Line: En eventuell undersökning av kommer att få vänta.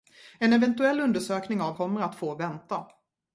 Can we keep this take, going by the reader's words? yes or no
yes